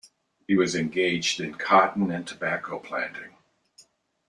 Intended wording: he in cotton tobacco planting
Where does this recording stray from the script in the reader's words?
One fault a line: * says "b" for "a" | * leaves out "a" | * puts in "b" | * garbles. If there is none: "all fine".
* puts in "was engaged"
* puts in "and"